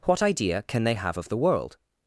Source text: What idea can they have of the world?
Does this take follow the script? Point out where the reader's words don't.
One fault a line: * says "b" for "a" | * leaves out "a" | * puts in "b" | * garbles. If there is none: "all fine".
all fine